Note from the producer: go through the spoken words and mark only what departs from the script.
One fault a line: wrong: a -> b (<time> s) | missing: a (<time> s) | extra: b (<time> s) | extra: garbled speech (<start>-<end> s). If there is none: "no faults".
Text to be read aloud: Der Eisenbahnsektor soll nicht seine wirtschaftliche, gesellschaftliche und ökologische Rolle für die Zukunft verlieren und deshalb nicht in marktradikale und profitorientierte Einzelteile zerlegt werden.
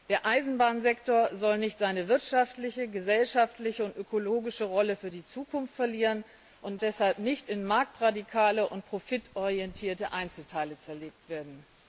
no faults